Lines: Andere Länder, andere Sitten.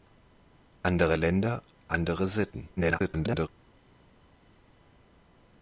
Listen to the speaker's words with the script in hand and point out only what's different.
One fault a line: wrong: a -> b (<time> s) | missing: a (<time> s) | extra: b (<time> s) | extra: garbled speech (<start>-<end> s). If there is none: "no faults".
extra: garbled speech (2.8-3.5 s)